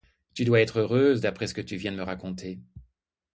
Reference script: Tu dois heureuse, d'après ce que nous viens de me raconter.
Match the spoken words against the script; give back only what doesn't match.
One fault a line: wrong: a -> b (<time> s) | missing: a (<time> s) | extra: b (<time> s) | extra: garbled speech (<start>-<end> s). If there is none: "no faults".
extra: être (0.6 s)
wrong: nous -> tu (1.6 s)